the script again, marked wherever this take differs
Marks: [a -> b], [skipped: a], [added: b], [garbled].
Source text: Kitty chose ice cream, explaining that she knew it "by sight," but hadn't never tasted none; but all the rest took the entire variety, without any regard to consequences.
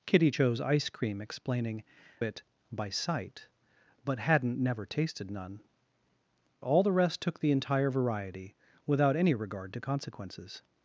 Kitty chose ice cream, explaining [skipped: that she knew] it "by sight," but hadn't never tasted none; [skipped: but] all the rest took the entire variety, without any regard to consequences.